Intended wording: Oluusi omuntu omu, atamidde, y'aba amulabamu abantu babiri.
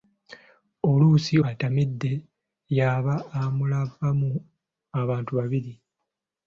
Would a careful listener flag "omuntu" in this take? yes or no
yes